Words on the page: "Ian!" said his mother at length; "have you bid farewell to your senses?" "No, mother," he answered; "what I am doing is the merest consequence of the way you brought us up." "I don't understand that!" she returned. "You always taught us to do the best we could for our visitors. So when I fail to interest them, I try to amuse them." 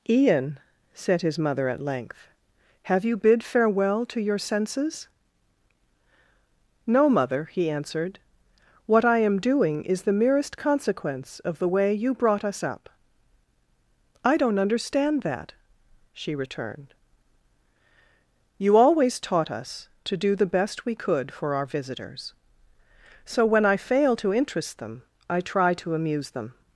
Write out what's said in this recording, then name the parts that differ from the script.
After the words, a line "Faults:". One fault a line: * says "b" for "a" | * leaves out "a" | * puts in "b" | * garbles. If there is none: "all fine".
"Ian!" said his mother at length; "have you bid farewell to your senses?" "No, mother," he answered; "what I am doing is the merest consequence of the way you brought us up." "I don't understand that!" she returned. "You always taught us to do the best we could for our visitors. So when I fail to interest them, I try to amuse them."
Faults:
all fine